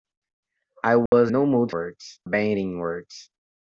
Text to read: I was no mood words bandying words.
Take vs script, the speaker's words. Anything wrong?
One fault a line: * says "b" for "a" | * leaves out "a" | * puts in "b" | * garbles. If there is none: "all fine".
all fine